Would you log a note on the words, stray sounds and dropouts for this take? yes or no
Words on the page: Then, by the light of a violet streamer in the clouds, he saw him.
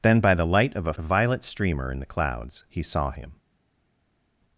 no